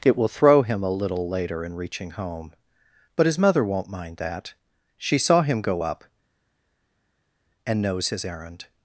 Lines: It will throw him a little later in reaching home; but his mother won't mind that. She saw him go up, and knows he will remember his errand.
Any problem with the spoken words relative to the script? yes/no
yes